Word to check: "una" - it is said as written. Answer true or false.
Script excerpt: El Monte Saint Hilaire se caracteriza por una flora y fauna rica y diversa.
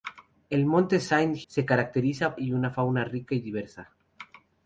false